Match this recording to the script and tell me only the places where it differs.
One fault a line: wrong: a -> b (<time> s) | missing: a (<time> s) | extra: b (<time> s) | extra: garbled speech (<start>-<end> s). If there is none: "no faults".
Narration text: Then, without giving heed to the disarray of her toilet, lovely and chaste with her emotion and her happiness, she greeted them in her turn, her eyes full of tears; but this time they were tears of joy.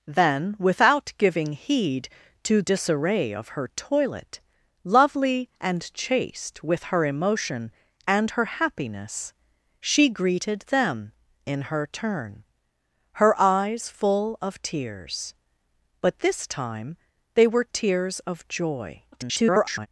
missing: the (2.6 s)
extra: garbled speech (19.1-19.9 s)